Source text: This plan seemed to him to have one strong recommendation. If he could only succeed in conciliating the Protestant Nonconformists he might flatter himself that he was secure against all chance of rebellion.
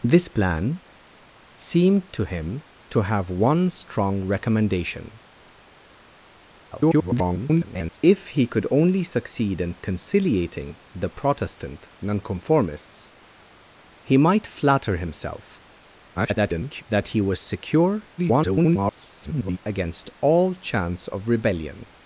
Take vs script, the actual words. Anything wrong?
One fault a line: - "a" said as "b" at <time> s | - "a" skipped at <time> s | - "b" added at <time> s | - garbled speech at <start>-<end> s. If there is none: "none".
- garbled speech at 6.7-8.0 s
- garbled speech at 16.2-16.8 s
- garbled speech at 18.2-19.6 s